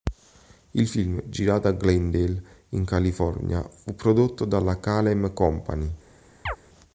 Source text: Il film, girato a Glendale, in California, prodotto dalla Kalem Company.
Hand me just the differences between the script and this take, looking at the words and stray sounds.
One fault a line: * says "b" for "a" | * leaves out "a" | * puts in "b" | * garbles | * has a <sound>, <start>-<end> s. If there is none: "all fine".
* puts in "fu"
* has a chirp, 6.5-6.6 s